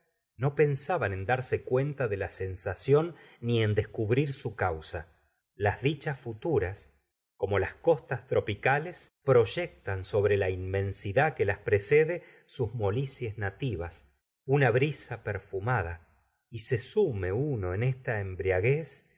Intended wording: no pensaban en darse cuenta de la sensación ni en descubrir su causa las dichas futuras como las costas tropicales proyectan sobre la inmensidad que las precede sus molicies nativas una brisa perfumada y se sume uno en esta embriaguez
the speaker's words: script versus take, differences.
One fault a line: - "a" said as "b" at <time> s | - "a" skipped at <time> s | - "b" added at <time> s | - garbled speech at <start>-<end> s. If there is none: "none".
none